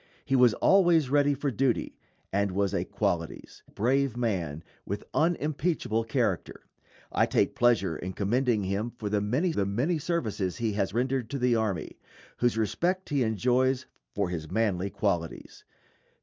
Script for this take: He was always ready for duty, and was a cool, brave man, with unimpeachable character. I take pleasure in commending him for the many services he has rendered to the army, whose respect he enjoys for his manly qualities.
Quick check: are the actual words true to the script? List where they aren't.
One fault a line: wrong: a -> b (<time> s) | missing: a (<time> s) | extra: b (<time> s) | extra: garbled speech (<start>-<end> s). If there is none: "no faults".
wrong: cool -> qualities (2.9 s)
extra: the many (9.5 s)